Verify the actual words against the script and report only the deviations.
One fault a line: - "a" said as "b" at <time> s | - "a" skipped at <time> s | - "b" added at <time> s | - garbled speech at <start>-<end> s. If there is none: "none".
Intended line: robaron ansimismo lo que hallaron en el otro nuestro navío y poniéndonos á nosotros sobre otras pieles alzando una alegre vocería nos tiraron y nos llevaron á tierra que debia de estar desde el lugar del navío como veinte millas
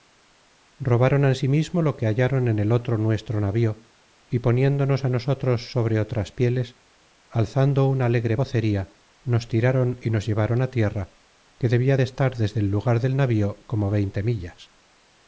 none